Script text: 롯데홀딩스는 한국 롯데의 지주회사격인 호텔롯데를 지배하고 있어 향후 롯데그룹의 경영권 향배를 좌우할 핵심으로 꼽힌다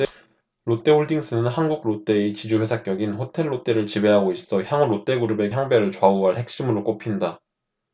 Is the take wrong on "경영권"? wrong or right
wrong